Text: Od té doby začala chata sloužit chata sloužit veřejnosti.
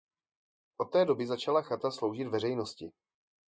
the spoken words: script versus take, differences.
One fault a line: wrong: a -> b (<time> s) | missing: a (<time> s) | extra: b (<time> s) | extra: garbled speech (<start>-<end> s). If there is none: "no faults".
missing: chata sloužit (2.3 s)